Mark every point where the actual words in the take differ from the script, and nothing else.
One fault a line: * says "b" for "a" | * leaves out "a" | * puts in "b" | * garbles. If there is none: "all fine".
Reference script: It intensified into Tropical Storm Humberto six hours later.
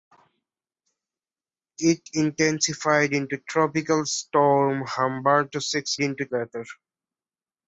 * says "into" for "hours"